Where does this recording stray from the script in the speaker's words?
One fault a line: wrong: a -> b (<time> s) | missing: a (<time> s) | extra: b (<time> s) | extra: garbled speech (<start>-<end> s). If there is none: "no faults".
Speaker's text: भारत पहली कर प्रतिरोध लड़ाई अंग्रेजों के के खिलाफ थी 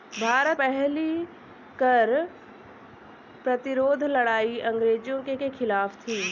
no faults